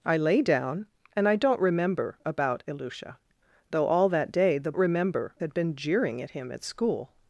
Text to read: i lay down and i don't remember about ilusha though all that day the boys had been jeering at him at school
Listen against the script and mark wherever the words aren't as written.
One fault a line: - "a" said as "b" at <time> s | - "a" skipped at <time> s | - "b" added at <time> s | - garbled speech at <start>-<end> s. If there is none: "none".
- "boys" said as "remember" at 4.8 s